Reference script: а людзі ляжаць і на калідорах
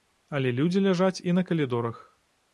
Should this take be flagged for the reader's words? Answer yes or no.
yes